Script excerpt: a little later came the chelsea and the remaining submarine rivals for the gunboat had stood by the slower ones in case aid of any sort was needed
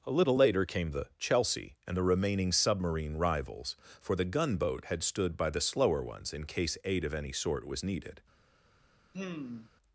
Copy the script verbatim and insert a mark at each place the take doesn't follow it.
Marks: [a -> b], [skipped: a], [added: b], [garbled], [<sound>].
a little later came the chelsea and the remaining submarine rivals for the gunboat had stood by the slower ones in case aid of any sort was needed [sigh]